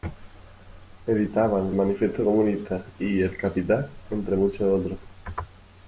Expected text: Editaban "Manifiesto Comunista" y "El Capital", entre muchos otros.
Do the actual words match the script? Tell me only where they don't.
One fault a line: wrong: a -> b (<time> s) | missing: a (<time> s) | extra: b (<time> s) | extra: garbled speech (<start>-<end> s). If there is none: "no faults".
no faults